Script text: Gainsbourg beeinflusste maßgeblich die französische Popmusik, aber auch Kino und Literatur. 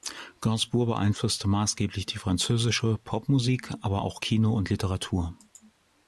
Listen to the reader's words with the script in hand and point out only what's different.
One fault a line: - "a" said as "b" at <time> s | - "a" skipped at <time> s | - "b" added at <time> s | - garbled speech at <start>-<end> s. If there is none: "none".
none